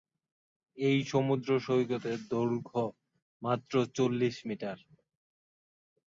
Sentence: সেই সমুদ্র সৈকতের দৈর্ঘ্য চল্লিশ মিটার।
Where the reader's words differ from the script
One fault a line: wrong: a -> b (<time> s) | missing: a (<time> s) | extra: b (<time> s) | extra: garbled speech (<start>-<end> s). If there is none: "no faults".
wrong: সেই -> এই (0.8 s)
extra: মাত্র (3.4 s)